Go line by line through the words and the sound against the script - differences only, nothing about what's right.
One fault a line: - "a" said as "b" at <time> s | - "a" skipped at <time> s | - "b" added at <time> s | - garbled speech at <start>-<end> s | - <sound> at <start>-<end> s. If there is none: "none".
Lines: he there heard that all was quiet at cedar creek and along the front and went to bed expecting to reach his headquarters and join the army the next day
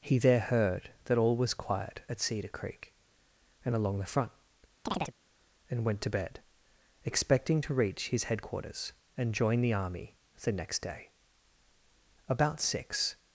- chirp at 4.9-5.1 s
- "about six" added at 12.3 s